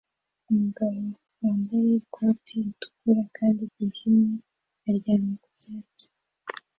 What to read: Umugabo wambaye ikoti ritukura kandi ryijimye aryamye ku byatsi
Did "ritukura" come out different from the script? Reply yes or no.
no